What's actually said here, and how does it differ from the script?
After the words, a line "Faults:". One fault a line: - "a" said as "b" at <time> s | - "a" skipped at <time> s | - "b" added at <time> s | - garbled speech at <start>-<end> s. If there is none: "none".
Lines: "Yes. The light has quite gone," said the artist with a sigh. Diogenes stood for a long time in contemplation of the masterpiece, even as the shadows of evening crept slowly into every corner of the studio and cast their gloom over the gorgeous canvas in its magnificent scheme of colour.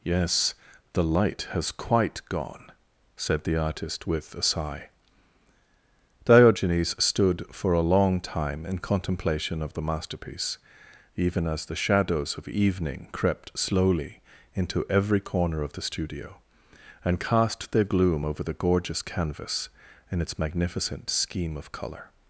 "Yes. The light has quite gone," said the artist with a sigh. Diogenes stood for a long time in contemplation of the masterpiece, even as the shadows of evening crept slowly into every corner of the studio and cast their gloom over the gorgeous canvas in its magnificent scheme of colour.
Faults:
none